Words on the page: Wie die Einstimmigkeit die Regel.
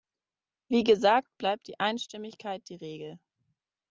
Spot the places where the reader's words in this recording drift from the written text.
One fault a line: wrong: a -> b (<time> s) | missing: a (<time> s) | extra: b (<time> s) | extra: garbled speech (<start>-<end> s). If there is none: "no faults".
extra: gesagt bleibt (0.8 s)